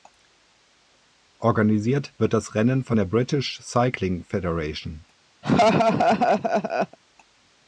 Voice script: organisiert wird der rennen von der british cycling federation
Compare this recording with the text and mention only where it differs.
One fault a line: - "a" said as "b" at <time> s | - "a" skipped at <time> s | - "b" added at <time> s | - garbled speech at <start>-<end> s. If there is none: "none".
- "der" said as "das" at 2.3 s